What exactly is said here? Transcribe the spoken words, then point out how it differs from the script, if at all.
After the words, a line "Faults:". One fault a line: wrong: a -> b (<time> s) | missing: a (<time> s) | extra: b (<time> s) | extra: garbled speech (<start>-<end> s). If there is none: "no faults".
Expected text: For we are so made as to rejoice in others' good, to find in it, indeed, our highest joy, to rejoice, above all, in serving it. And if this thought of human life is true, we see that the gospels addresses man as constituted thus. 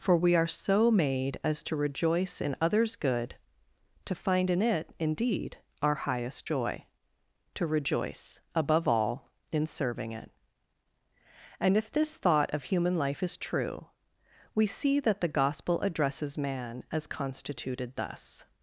For we are so made as to rejoice in others' good, to find in it, indeed, our highest joy, to rejoice, above all, in serving it. And if this thought of human life is true, we see that the gospel addresses man as constituted thus.
Faults:
wrong: gospels -> gospel (15.3 s)